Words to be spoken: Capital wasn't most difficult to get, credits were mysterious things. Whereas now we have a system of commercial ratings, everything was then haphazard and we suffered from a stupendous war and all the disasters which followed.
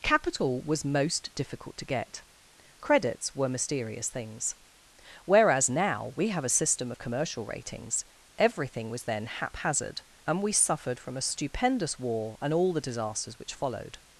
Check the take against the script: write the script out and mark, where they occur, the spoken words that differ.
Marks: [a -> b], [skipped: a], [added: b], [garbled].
Capital [wasn't -> was] most difficult to get, credits were mysterious things. Whereas now we have a system of commercial ratings, everything was then haphazard and we suffered from a stupendous war and all the disasters which followed.